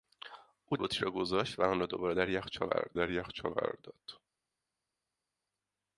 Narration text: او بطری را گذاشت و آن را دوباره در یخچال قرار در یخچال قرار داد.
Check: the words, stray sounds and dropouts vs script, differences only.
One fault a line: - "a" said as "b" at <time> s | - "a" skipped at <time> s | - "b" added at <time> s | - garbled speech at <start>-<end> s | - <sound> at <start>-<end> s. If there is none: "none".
none